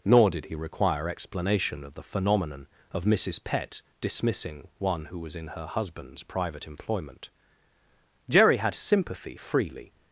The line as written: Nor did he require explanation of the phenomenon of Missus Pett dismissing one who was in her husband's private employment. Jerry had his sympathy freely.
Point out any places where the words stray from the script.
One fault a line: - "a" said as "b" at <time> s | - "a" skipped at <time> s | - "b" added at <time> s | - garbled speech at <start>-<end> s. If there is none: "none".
- "his" skipped at 8.8 s